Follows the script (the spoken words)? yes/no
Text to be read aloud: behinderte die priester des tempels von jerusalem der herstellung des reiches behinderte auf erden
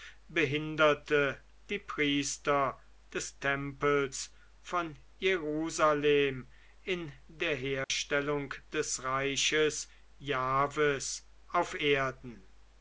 no